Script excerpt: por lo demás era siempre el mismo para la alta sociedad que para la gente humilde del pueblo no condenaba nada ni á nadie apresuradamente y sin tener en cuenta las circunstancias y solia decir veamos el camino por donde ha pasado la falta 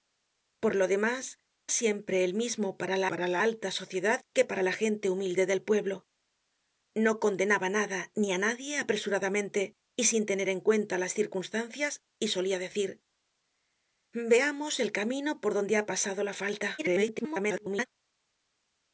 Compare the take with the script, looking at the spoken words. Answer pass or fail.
fail